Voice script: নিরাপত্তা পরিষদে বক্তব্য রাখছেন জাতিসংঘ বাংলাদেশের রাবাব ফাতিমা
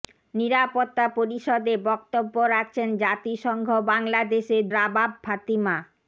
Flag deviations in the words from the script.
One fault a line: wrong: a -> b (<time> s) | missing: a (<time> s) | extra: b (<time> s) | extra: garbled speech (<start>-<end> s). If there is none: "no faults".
no faults